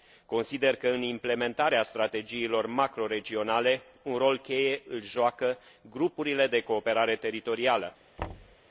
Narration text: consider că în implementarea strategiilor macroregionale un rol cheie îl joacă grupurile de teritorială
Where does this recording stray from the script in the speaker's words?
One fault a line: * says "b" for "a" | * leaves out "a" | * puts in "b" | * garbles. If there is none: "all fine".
* puts in "cooperare"